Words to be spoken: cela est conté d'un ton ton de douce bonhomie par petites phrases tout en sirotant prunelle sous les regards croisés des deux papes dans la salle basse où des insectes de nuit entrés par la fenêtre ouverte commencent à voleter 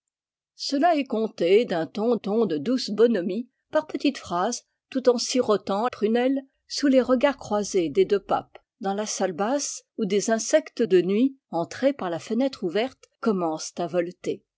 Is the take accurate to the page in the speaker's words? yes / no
yes